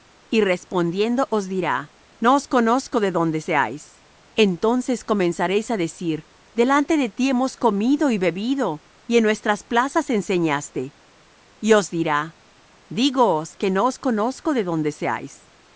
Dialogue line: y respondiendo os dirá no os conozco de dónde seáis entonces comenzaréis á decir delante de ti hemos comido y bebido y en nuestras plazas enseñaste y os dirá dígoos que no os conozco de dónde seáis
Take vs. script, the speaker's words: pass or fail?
pass